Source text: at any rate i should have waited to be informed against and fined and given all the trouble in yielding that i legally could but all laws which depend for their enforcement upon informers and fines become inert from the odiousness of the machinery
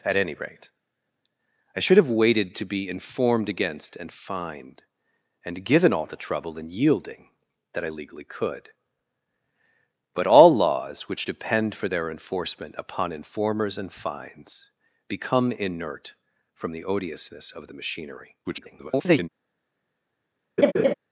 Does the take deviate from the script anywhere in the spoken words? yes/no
yes